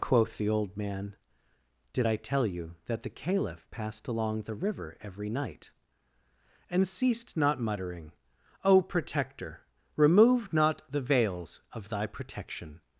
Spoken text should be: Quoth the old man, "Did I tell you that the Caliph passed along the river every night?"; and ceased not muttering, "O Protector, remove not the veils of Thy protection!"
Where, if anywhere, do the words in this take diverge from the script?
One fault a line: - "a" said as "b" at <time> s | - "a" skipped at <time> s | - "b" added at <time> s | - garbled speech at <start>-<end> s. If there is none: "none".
none